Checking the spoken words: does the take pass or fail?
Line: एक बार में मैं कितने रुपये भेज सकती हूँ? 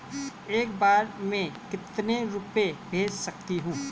fail